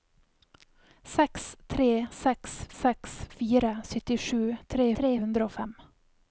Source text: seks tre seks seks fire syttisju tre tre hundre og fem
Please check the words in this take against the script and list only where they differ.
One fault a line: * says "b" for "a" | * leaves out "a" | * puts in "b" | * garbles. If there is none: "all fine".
all fine